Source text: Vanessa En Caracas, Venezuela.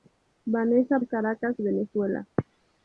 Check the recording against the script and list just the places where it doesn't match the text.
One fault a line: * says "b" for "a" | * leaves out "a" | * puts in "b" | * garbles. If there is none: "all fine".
all fine